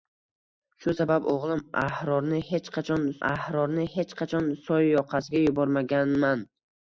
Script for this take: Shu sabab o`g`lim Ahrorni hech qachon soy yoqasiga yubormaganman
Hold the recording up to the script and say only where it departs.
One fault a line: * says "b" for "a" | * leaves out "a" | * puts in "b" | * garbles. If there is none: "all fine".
* puts in "Ahrorni hech qachon"